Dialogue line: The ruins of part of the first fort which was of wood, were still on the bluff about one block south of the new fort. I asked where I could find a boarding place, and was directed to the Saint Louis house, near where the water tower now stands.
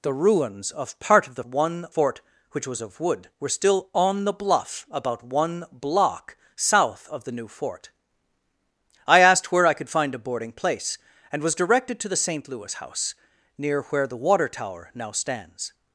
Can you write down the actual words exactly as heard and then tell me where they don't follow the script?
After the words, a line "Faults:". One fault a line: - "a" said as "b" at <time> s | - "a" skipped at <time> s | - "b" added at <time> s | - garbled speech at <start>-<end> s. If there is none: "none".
The ruins of part of the one fort which was of wood, were still on the bluff about one block south of the new fort. I asked where I could find a boarding place, and was directed to the Saint Louis house, near where the water tower now stands.
Faults:
- "first" said as "one" at 1.4 s